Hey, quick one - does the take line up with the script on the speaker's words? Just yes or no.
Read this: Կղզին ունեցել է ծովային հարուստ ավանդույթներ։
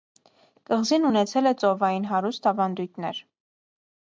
yes